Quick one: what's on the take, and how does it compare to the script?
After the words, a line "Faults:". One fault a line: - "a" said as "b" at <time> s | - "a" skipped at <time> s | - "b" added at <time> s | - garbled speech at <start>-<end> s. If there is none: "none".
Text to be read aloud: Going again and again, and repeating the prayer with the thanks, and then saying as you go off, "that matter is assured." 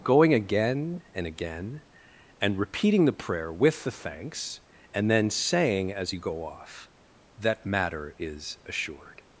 Going again and again, and repeating the prayer with the thanks, and then saying as you go off, "that matter is assured."
Faults:
none